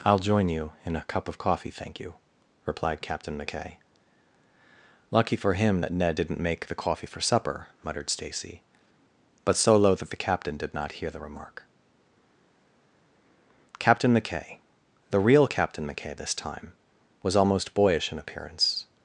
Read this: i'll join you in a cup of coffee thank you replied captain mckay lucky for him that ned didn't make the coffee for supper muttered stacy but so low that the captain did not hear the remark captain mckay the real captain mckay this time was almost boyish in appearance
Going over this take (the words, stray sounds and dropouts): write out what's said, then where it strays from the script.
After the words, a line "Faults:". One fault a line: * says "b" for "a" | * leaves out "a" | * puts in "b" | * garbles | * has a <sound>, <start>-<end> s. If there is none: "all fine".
i'll join you in a cup of coffee thank you replied captain mckay lucky for him that ned didn't make the coffee for supper muttered stacy but so low that the captain did not hear the remark captain mckay the real captain mckay this time was almost boyish in appearance
Faults:
all fine